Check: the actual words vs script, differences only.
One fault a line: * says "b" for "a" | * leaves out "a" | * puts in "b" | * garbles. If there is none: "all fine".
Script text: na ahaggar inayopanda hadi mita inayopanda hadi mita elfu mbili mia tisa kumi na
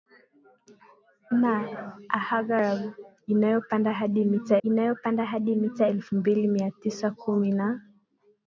all fine